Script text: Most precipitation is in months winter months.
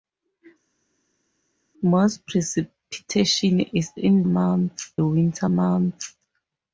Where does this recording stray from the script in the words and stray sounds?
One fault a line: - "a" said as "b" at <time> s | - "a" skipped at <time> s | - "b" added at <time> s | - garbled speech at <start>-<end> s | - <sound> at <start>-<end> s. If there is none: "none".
none